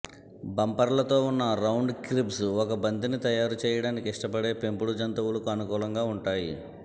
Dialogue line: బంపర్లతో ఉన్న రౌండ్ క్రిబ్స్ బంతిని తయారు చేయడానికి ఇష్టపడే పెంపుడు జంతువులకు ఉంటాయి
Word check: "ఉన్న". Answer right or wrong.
right